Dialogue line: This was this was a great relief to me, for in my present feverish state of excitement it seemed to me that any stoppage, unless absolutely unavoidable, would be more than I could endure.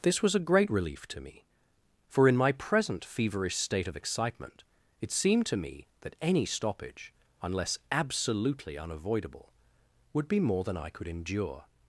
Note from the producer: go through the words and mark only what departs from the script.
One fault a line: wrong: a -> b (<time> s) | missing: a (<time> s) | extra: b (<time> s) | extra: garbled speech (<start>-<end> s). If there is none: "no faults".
missing: this was (0.3 s)